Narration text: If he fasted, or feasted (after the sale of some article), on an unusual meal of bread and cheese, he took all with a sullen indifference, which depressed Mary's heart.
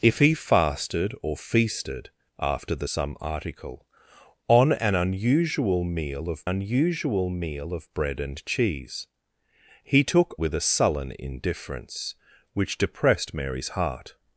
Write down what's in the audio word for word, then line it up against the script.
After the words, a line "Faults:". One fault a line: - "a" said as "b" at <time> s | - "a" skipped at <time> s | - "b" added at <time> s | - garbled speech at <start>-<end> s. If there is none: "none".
If he fasted, or feasted (after the some article), on an unusual meal of unusual meal of bread and cheese, he took with a sullen indifference, which depressed Mary's heart.
Faults:
- "sale of" skipped at 2.9 s
- "unusual meal of" added at 6.4 s
- "all" skipped at 10.4 s